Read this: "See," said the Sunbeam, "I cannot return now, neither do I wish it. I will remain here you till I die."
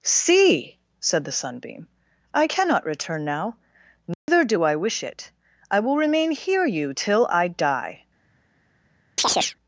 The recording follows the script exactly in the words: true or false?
true